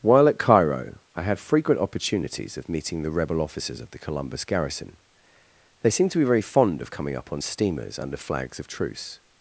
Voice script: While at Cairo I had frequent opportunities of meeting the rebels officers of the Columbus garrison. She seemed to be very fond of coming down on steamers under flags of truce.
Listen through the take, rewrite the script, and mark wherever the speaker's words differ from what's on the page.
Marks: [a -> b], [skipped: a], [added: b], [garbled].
While at Cairo I had frequent opportunities of meeting the [rebels -> rebel] officers of the Columbus garrison. [She -> They] seemed to be very fond of coming [down -> up] on steamers under flags of truce.